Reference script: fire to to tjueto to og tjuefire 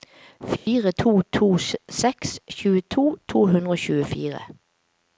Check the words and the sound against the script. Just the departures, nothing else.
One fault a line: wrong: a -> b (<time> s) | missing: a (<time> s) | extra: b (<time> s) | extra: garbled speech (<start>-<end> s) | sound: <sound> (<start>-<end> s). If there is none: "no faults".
sound: dropout (0.6-0.7 s)
extra: seks (2.0 s)
extra: hundre (3.5 s)